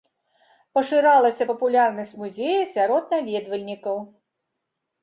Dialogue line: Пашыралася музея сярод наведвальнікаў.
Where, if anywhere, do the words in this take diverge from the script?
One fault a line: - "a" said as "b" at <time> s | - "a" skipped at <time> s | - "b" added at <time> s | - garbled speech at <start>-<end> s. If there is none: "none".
- "папулярнасць" added at 1.5 s